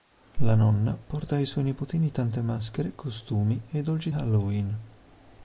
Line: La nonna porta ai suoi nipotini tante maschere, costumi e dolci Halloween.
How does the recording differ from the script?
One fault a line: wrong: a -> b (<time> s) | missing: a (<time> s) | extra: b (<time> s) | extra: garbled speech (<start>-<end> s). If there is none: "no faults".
no faults